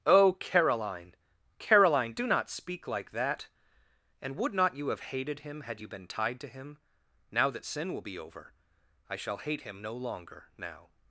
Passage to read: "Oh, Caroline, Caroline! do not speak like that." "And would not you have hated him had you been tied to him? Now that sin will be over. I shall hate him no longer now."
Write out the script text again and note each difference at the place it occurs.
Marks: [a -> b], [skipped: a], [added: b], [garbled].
"Oh, Caroline, Caroline! do not speak like that." "And would not you have hated him had you been tied to him? Now that sin will be over. I shall hate him no longer now."